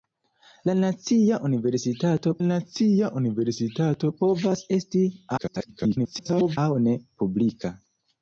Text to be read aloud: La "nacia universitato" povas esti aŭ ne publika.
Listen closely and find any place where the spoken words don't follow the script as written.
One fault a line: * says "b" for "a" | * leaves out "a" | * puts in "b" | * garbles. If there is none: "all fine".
* puts in "nacia universitato"
* garbles